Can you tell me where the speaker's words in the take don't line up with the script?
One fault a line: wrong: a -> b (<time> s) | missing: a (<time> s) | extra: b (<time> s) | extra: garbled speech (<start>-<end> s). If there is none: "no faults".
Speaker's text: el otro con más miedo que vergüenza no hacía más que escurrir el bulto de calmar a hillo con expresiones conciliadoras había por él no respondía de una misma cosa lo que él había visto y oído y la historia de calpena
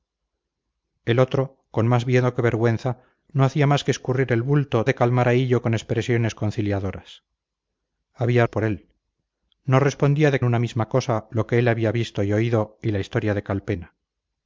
no faults